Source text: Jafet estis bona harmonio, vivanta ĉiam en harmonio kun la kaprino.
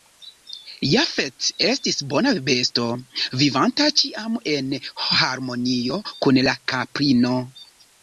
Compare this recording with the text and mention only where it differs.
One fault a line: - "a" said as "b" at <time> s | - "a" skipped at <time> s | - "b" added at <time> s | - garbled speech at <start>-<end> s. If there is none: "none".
- "harmonio" said as "besto" at 2.5 s